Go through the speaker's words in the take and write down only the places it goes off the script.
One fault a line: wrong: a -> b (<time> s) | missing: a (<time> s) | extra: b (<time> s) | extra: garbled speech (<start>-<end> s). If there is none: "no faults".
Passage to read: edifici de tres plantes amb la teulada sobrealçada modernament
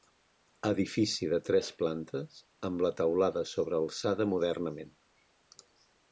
no faults